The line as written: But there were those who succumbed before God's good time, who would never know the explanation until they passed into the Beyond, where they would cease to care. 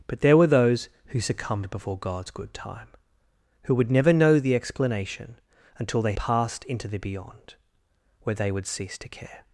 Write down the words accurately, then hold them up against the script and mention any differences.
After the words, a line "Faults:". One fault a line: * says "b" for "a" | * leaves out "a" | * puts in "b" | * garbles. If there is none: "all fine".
But there were those who succumbed before God's good time, who would never know the explanation until they passed into the Beyond, where they would cease to care.
Faults:
all fine